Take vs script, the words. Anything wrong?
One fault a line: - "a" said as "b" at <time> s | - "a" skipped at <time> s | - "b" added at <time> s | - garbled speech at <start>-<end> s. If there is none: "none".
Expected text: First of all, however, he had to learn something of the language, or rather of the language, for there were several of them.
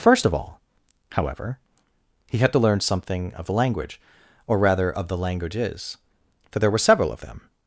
- "language" said as "languages" at 5.2 s